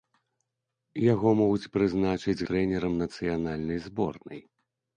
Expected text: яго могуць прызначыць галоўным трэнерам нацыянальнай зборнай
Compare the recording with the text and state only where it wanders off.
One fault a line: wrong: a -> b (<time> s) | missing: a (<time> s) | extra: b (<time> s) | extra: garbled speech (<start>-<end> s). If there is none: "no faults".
missing: галоўным (2.5 s)